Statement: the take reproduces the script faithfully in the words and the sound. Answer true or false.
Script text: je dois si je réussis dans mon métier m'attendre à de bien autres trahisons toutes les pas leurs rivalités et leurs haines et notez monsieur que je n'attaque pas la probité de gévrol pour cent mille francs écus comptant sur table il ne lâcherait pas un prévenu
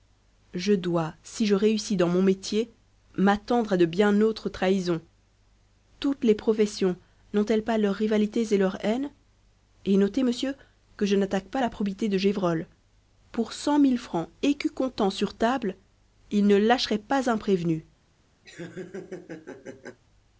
false